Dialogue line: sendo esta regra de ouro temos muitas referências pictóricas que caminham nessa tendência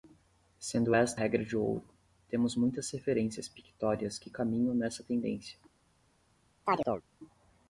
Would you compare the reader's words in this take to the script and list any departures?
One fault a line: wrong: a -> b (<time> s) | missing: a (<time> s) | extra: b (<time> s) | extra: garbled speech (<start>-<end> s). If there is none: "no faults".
no faults